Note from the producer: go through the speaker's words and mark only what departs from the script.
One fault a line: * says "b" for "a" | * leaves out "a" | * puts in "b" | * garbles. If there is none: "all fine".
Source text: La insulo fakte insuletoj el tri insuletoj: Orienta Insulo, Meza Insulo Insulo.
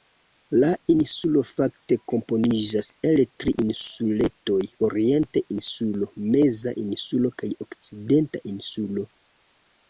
* says "komponiĝas" for "insuletoj"
* puts in "kaj Okcidenta"